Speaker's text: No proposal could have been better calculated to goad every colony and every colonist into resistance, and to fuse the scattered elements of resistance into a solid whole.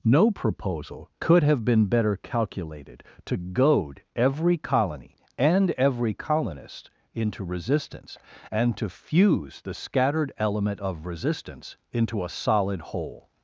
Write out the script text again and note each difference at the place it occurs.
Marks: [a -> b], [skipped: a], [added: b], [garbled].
No proposal could have been better calculated to goad every colony and every colonist into resistance, and to fuse the scattered [elements -> element] of resistance into a solid whole.